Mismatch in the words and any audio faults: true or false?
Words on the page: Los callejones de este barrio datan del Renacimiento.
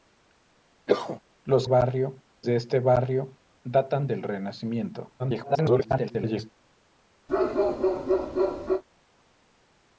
true